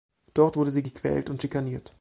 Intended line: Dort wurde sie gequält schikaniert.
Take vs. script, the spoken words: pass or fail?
fail